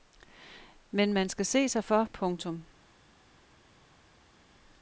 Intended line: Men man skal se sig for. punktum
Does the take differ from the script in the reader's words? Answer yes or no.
no